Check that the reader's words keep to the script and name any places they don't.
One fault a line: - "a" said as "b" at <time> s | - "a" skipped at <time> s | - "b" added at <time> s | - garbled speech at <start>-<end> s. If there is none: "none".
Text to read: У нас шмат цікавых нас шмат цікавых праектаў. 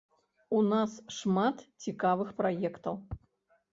- "нас шмат цікавых" skipped at 2.3 s